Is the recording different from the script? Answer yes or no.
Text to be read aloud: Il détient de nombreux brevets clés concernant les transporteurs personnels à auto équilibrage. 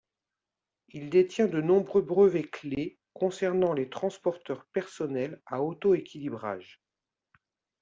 no